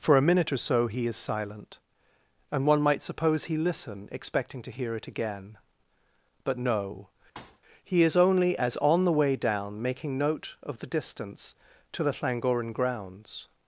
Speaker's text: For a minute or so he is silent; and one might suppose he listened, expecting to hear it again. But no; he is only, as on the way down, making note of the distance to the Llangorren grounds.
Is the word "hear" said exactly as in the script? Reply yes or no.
yes